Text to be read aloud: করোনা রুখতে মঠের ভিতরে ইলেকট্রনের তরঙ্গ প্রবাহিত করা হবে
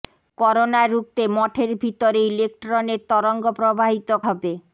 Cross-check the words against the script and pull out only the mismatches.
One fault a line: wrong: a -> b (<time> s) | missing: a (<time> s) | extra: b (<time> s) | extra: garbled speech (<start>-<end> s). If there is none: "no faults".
missing: করা (4.1 s)